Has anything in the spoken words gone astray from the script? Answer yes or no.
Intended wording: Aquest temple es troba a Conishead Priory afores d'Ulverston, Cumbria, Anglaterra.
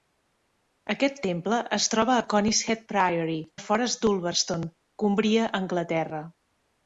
no